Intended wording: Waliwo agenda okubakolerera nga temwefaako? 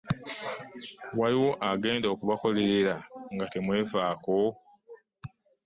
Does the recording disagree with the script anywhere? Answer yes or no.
no